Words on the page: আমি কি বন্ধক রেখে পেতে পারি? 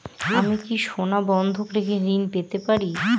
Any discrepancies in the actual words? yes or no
yes